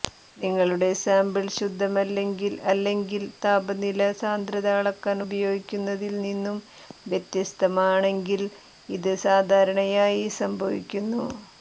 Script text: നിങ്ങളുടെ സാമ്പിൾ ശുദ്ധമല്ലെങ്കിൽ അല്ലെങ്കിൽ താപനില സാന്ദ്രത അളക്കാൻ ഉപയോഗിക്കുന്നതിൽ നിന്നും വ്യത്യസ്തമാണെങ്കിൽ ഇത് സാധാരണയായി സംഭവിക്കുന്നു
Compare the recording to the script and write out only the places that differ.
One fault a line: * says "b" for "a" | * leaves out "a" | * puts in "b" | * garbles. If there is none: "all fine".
all fine